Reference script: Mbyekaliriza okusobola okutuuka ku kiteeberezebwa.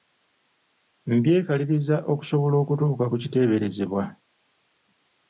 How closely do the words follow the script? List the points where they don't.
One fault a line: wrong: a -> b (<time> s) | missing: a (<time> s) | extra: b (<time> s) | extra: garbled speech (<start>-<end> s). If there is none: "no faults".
no faults